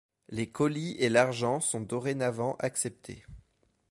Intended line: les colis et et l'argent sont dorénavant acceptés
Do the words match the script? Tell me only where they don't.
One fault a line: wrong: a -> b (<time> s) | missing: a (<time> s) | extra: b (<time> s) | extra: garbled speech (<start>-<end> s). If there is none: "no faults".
missing: et (1.1 s)